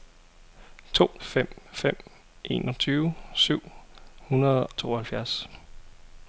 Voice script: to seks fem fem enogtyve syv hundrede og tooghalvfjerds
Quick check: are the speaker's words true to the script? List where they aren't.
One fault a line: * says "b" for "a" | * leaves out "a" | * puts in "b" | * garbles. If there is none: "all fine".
* leaves out "seks"
* leaves out "og"